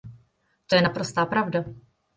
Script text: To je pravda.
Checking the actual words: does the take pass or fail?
fail